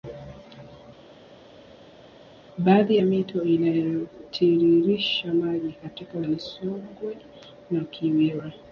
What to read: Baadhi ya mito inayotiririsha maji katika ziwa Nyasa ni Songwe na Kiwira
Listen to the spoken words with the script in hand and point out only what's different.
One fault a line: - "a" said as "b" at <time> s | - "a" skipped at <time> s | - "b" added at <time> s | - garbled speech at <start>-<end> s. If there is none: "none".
- "ziwa Nyasa" skipped at 6.2 s